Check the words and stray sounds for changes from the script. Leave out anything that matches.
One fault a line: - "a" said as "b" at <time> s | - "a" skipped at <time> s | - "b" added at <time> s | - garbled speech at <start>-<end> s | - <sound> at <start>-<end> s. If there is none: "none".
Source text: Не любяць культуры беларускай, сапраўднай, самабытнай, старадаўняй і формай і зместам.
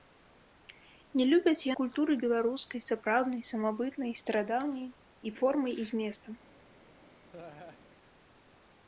- laugh at 7.3-7.8 s